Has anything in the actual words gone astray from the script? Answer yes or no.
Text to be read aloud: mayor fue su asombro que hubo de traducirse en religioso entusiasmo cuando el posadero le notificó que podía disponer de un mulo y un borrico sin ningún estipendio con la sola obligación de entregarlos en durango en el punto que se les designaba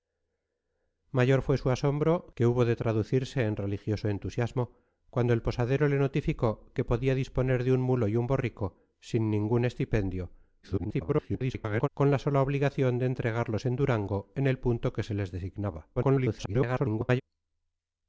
yes